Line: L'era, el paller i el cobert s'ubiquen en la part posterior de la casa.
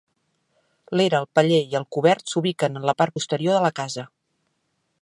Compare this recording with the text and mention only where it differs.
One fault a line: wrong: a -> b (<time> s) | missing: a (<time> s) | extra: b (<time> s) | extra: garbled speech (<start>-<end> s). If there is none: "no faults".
no faults